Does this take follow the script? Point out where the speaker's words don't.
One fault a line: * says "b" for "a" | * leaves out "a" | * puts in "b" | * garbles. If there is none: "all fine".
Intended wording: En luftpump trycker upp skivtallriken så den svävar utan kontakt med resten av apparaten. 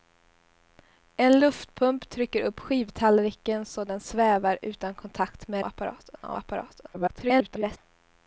* says "apparaten" for "resten"
* garbles